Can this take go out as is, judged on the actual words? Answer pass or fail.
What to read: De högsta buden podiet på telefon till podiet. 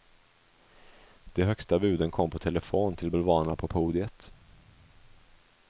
fail